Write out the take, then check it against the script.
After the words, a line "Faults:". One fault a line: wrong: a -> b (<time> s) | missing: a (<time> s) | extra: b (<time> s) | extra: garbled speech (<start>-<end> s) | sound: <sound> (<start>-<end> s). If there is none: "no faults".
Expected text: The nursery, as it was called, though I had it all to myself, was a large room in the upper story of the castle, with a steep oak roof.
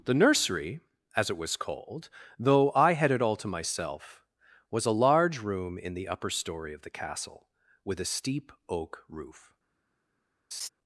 The nursery, as it was called, though I had it all to myself, was a large room in the upper story of the castle, with a steep oak roof.
Faults:
sound: laugh (10.5-10.7 s)